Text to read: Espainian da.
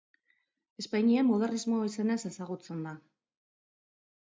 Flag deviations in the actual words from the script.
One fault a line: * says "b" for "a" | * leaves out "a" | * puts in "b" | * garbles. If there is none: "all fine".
* puts in "modernismo izenez ezagutzen"